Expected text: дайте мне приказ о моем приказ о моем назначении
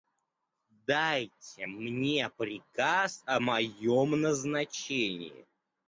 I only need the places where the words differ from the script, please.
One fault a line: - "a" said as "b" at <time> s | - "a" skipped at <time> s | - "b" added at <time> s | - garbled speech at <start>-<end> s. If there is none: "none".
- "приказ о моем" skipped at 4.1 s